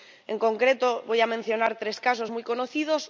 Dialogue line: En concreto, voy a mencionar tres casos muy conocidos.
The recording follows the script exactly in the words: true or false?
true